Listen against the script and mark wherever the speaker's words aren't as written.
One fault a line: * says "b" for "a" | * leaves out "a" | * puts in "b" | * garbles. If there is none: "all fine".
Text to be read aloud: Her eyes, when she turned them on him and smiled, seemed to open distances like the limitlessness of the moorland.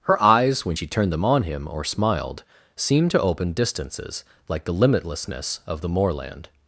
* says "or" for "and"